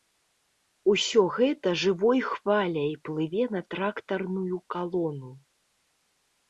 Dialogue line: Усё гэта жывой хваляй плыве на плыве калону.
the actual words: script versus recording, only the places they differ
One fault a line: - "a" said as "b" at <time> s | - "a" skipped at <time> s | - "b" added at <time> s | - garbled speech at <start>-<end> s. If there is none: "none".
- "плыве" said as "трактарную" at 3.8 s